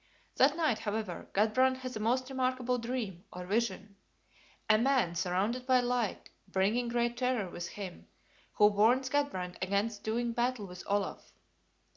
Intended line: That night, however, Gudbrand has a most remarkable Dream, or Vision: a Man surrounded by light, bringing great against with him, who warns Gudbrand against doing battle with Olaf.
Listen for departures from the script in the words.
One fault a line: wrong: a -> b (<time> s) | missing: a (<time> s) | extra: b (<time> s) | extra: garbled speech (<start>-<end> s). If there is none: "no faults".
wrong: against -> terror (7.2 s)